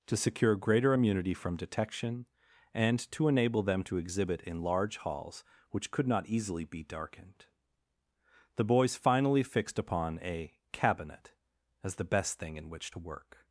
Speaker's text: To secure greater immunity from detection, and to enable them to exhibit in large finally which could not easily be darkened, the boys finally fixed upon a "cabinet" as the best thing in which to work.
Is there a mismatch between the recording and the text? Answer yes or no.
yes